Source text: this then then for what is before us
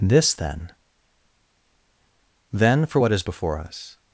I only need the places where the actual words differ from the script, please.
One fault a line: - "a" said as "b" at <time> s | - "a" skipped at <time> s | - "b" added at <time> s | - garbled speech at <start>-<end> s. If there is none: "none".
none